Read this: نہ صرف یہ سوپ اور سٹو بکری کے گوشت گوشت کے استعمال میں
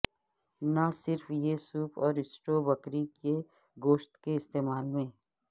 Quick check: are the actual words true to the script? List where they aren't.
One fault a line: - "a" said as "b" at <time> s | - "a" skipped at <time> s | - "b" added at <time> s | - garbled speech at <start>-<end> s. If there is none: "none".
- "گوشت" skipped at 4.2 s